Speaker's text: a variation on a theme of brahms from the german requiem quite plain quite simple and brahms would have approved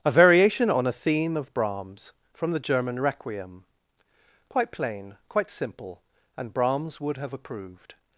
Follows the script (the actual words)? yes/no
yes